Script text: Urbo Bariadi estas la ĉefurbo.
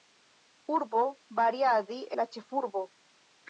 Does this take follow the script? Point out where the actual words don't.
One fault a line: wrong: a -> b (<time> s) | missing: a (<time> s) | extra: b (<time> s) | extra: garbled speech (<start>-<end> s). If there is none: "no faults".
missing: estas (2.0 s)